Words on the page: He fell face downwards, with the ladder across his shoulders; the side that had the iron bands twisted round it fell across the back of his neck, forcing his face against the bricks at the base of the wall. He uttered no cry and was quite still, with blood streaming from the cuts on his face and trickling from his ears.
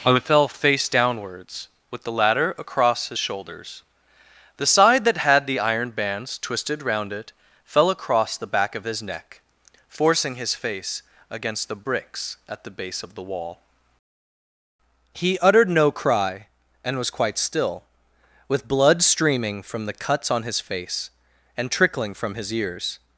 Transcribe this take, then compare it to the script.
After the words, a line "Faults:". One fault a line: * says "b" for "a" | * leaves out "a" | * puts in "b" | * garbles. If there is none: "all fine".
I fell face downwards, with the ladder across his shoulders; the side that had the iron bands twisted round it fell across the back of his neck, forcing his face against the bricks at the base of the wall. He uttered no cry and was quite still, with blood streaming from the cuts on his face and trickling from his ears.
Faults:
* says "I" for "He"